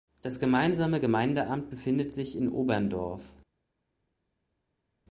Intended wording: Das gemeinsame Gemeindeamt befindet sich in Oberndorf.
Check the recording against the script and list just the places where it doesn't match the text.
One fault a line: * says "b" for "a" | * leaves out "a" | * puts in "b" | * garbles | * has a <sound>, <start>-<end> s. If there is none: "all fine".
all fine